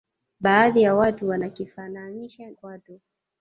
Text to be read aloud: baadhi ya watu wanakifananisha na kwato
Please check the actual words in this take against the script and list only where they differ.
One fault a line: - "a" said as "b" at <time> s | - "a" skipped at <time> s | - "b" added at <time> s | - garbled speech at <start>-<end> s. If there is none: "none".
- "na" skipped at 2.5 s